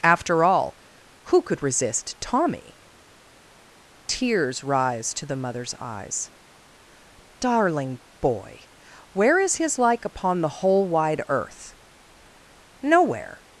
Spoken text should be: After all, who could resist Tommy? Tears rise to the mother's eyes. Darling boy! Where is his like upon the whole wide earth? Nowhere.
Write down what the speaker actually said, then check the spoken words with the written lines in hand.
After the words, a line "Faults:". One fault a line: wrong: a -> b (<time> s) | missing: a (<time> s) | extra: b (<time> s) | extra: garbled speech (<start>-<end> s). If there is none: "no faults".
After all, who could resist Tommy? Tears rise to the mother's eyes. Darling boy! Where is his like upon the whole wide earth? Nowhere.
Faults:
no faults